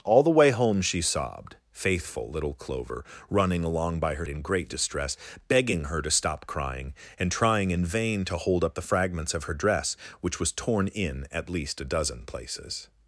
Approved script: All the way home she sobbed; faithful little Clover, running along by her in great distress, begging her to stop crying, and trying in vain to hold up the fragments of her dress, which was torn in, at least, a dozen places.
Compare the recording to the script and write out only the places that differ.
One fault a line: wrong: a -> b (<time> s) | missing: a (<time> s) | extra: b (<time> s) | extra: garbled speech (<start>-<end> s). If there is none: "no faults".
no faults